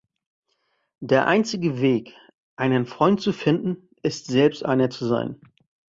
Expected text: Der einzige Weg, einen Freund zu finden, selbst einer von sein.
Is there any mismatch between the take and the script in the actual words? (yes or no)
yes